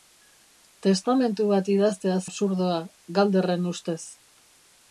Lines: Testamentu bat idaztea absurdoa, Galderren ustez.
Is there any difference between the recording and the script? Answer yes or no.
no